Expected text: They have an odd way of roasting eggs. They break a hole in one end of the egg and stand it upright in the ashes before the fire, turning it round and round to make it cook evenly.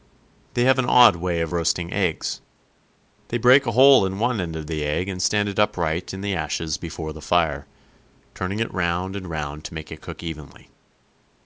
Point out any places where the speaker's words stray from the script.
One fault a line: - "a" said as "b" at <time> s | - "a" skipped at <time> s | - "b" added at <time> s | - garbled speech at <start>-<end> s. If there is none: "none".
none